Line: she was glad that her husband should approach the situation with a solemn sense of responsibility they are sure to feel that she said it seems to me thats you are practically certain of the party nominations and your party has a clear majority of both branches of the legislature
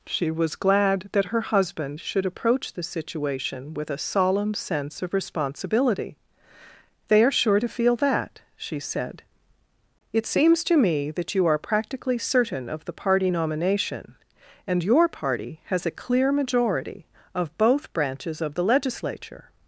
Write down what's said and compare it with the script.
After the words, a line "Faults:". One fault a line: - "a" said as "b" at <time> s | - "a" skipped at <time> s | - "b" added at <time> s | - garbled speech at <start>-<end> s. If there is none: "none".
she was glad that her husband should approach the situation with a solemn sense of responsibility they are sure to feel that she said it seems to me that you are practically certain of the party nomination and your party has a clear majority of both branches of the legislature
Faults:
- "thats" said as "that" at 11.1 s
- "nominations" said as "nomination" at 13.3 s